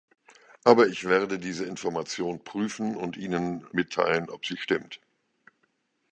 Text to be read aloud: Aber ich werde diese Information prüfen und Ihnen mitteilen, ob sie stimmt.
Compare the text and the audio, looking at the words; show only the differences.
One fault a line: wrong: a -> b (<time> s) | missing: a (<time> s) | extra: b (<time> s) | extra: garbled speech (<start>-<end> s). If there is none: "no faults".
no faults